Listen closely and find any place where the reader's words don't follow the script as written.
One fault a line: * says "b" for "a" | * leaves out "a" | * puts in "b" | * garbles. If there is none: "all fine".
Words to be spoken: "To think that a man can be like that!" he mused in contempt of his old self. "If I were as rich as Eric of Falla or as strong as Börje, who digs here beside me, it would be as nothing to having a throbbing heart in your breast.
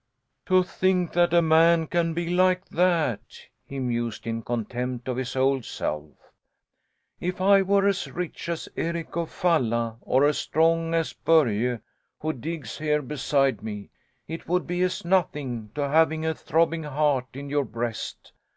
all fine